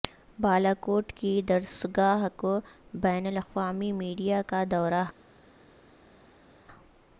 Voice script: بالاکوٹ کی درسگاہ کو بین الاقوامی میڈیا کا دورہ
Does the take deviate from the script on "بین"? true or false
false